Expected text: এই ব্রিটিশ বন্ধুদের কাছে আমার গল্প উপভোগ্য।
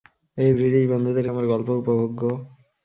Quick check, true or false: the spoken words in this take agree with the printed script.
false